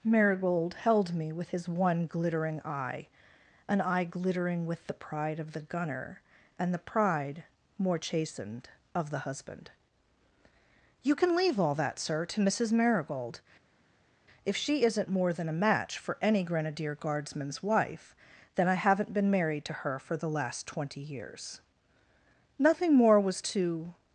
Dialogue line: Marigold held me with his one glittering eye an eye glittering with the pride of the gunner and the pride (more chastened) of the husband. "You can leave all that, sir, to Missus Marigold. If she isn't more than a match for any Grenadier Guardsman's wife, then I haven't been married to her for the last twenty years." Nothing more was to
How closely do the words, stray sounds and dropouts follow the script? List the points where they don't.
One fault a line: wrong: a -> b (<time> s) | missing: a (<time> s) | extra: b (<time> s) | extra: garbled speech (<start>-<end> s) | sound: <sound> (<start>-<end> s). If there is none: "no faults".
no faults